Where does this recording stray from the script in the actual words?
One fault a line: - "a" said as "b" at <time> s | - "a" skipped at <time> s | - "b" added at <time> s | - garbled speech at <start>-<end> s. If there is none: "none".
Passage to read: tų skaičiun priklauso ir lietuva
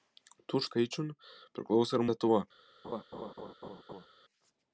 none